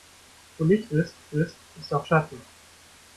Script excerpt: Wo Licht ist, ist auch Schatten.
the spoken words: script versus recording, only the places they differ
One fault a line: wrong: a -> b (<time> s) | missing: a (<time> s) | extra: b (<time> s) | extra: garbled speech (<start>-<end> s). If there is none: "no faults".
extra: ist (1.8 s)